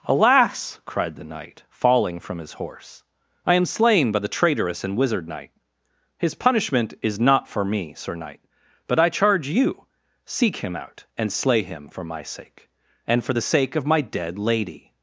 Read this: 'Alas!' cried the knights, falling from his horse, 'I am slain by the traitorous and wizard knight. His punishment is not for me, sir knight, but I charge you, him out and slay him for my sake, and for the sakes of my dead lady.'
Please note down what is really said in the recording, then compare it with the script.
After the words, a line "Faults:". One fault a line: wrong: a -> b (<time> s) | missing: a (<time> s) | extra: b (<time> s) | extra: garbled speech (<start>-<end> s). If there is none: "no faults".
'Alas!' cried the knight, falling from his horse, 'I am slain by the traitorous and wizard knight. His punishment is not for me, sir knight, but I charge you, seek him out and slay him for my sake, and for the sake of my dead lady.'
Faults:
wrong: knights -> knight (1.2 s)
extra: seek (10.2 s)
wrong: sakes -> sake (13.4 s)